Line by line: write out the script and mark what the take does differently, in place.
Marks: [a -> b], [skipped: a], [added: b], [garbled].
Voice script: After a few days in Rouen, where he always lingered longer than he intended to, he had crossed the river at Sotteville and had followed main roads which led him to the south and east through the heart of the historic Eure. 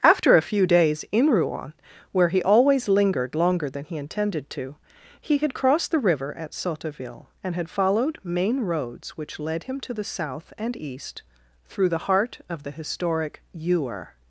After a few days in Rouen, where he always lingered longer than he intended to, he had crossed the river at Sotteville and had followed main roads which led him to the south and east through the heart of the historic Eure.